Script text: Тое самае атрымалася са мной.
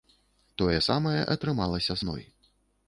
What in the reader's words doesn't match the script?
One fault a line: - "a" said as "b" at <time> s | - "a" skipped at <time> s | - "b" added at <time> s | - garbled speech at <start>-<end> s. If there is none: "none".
- "са" skipped at 2.0 s